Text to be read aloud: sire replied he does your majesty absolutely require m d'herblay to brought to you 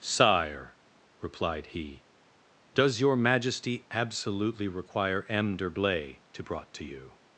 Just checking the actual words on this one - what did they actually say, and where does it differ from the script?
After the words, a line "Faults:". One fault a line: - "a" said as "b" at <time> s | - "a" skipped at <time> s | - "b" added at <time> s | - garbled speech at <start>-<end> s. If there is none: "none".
sire replied he does your majesty absolutely require m d'herblay to brought to you
Faults:
none